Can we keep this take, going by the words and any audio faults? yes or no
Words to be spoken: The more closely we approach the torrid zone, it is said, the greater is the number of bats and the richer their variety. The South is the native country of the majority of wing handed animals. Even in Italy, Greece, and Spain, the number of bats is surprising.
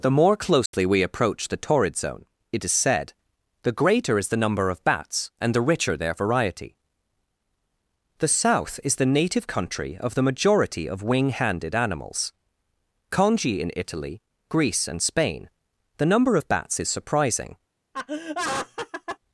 no